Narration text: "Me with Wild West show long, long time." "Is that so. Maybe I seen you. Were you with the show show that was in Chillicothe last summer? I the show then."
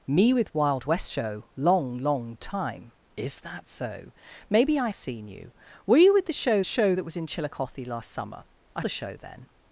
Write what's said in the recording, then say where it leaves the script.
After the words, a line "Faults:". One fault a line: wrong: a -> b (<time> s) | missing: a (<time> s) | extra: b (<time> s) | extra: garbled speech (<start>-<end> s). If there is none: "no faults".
"Me with Wild West show long, long time." "Is that so. Maybe I seen you. Were you with the show show that was in Chillicothe last summer? I the show then."
Faults:
no faults